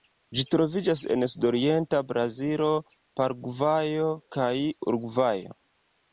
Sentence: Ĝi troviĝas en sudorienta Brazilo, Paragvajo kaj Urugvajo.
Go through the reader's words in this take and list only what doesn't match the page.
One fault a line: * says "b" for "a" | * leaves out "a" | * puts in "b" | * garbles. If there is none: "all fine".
all fine